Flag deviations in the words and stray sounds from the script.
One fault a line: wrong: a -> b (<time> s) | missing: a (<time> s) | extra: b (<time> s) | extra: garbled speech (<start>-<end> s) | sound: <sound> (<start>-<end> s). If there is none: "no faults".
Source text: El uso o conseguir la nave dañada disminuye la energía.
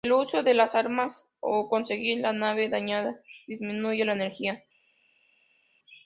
extra: de las armas (0.4 s)